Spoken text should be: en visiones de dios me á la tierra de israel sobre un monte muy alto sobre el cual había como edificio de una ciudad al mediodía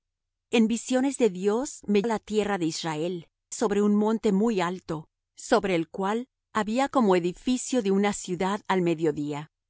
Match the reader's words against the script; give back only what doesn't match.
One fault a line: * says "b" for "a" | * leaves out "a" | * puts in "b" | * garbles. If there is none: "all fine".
all fine